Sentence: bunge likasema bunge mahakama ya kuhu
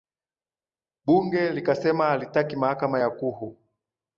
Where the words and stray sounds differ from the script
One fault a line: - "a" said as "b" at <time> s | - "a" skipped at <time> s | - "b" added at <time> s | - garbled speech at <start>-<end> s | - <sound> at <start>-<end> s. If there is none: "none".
- "bunge" said as "halitaki" at 2.1 s